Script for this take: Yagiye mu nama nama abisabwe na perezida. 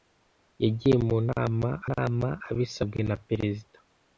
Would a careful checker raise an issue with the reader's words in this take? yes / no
no